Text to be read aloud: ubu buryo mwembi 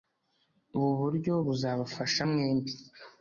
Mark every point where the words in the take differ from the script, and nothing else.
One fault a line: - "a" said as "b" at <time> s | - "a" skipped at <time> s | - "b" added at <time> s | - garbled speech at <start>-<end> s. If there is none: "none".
- "buzabafasha" added at 1.4 s